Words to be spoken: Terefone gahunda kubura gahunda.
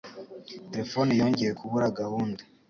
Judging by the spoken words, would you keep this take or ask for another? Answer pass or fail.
fail